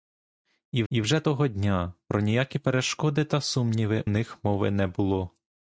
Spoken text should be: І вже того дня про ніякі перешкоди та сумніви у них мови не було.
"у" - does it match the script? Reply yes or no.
no